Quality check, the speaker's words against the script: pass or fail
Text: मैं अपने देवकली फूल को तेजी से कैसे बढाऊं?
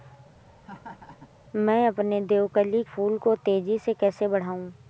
pass